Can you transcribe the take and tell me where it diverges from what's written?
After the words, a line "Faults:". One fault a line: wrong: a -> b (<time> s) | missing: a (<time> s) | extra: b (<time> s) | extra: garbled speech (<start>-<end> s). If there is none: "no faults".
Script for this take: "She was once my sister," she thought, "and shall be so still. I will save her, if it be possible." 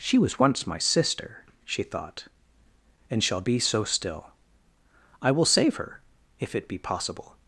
"She was once my sister," she thought, "and shall be so still. I will save her, if it be possible."
Faults:
no faults